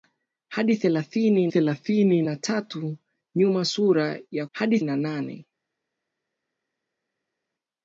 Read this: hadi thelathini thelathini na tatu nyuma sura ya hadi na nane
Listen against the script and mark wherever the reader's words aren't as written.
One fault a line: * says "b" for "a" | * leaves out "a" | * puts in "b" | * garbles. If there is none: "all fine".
all fine